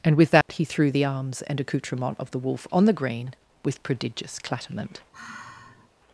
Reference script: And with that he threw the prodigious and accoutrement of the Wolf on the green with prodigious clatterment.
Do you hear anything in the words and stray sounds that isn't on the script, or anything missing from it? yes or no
yes